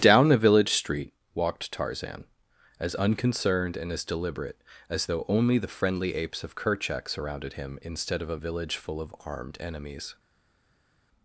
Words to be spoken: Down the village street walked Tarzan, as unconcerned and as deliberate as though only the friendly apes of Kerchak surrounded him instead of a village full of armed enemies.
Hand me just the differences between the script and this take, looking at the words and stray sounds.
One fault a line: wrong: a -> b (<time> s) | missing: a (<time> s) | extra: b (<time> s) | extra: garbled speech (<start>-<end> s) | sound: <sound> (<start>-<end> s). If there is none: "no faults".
no faults